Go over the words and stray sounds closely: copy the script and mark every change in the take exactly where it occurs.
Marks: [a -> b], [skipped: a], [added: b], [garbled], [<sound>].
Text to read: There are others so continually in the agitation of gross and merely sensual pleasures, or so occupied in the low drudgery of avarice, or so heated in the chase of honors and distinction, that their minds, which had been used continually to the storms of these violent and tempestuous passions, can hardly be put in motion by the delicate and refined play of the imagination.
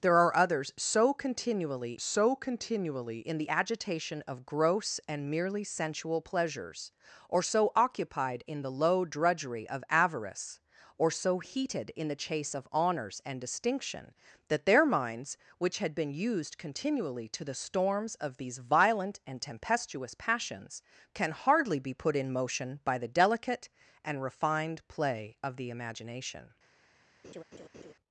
There are others so continually [added: so continually] in the agitation of gross and merely sensual pleasures, or so occupied in the low drudgery of avarice, or so heated in the chase of honors and distinction, that their minds, which had been used continually to the storms of these violent and tempestuous passions, can hardly be put in motion by the delicate and refined play of the imagination. [laugh]